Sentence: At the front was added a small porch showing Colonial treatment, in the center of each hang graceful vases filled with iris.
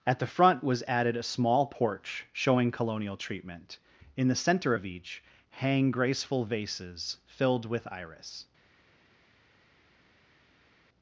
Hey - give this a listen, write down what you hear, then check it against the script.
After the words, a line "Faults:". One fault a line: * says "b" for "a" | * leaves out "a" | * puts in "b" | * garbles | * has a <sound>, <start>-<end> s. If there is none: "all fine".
At the front was added a small porch showing Colonial treatment, in the center of each hang graceful vases filled with iris.
Faults:
all fine